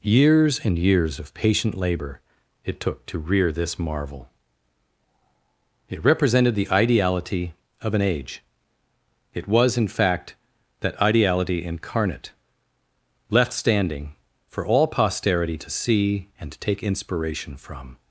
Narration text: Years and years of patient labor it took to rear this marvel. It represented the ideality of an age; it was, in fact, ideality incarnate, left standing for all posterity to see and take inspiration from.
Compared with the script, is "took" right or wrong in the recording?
right